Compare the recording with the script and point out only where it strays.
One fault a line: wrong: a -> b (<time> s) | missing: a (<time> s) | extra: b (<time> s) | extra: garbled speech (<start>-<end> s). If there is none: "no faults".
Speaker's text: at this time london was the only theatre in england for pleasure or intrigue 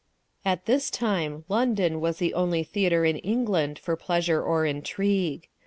no faults